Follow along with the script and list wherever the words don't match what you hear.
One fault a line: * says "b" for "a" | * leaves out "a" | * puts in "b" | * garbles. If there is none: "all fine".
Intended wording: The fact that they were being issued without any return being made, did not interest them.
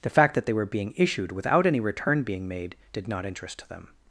all fine